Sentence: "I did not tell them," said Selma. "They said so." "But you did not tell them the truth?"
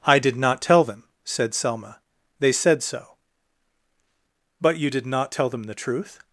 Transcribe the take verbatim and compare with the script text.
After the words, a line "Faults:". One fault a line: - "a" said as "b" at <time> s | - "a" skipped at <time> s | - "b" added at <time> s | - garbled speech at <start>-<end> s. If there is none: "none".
"I did not tell them," said Selma. "They said so." "But you did not tell them the truth?"
Faults:
none